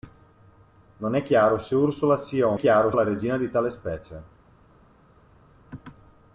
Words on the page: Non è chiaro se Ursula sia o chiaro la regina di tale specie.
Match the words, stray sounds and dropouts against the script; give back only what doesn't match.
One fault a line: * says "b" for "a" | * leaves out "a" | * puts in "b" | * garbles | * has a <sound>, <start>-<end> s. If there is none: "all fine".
all fine